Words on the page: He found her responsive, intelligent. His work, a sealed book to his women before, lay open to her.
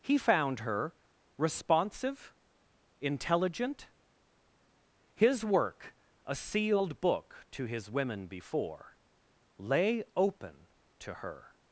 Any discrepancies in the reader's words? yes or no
no